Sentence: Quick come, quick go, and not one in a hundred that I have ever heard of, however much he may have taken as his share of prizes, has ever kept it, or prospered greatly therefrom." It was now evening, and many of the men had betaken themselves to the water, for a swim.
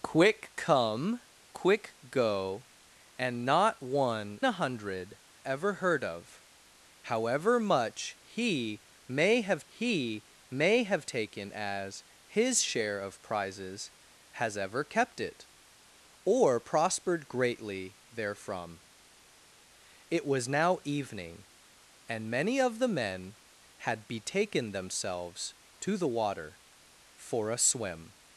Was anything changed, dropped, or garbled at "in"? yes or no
yes